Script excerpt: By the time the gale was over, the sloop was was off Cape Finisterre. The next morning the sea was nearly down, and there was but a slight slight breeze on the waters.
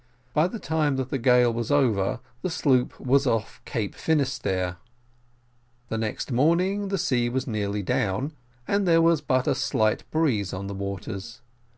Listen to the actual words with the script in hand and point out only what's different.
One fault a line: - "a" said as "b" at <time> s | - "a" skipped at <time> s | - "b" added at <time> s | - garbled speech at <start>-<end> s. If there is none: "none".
- "that" added at 0.9 s
- "was" skipped at 3.3 s
- "slight" skipped at 10.1 s